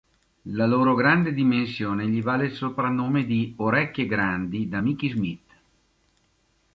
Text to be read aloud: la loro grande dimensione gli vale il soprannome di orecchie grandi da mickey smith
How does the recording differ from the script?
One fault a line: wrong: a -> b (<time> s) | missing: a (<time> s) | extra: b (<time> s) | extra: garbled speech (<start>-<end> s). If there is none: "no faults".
no faults